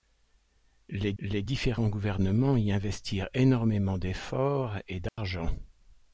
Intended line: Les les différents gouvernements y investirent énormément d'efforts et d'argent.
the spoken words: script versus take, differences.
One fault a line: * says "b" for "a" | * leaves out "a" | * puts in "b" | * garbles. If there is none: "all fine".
all fine